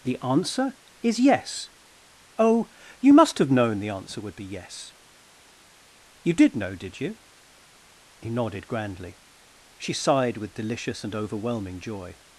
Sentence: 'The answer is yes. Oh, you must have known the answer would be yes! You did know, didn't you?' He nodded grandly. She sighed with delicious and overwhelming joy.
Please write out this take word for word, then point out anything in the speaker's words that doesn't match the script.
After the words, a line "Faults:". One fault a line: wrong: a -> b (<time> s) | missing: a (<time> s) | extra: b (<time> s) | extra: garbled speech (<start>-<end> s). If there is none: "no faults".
'The answer is yes. Oh, you must have known the answer would be yes! You did know, did you?' He nodded grandly. She sighed with delicious and overwhelming joy.
Faults:
wrong: didn't -> did (6.7 s)